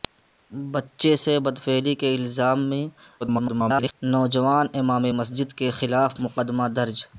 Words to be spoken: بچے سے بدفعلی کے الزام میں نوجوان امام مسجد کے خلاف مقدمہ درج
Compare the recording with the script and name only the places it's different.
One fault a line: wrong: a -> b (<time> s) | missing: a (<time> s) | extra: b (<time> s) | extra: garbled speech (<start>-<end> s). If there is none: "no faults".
extra: garbled speech (3.2-4.0 s)